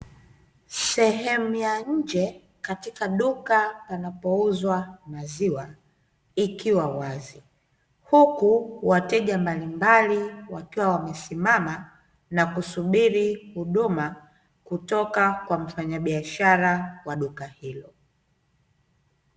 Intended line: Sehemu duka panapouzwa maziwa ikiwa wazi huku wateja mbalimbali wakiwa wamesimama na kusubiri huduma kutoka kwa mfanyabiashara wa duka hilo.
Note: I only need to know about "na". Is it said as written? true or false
true